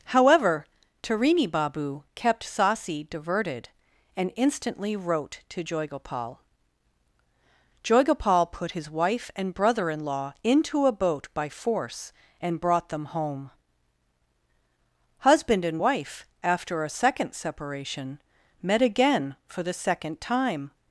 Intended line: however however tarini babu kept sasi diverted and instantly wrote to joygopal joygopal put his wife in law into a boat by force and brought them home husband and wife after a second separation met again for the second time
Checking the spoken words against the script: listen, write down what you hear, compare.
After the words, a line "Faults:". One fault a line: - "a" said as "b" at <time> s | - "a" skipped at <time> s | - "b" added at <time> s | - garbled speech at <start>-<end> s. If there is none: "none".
however tarini babu kept sasi diverted and instantly wrote to joygopal joygopal put his wife and brother in law into a boat by force and brought them home husband and wife after a second separation met again for the second time
Faults:
- "however" skipped at 0.7 s
- "and brother" added at 9.4 s